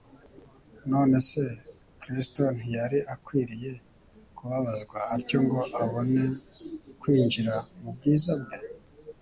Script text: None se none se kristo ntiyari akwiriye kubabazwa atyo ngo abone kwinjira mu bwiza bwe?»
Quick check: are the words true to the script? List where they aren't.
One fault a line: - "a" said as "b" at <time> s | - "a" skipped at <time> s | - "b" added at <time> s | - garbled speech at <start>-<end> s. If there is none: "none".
- "none se" skipped at 1.4 s